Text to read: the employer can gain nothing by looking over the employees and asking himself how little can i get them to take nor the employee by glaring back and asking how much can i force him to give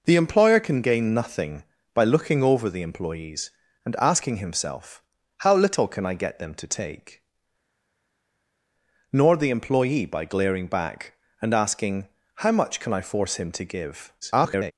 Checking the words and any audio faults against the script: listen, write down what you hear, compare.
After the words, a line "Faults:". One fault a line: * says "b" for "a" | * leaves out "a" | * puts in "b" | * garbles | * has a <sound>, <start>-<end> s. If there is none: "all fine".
the employer can gain nothing by looking over the employees and asking himself how little can i get them to take nor the employee by glaring back and asking how much can i force him to give [garbled]
Faults:
* garbles